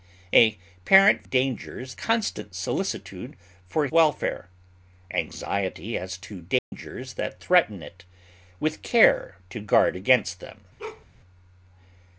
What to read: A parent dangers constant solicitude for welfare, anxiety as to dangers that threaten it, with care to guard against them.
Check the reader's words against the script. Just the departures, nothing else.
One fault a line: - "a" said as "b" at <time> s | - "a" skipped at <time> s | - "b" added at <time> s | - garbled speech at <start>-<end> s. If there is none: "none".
none